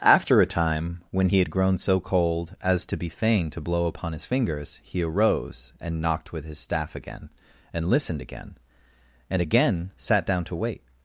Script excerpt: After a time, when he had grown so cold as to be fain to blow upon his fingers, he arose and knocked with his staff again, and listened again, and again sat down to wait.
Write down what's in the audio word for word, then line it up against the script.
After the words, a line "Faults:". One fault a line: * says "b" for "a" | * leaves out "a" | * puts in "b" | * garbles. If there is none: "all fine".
After a time, when he had grown so cold as to be fain to blow upon his fingers, he arose and knocked with his staff again, and listened again, and again sat down to wait.
Faults:
all fine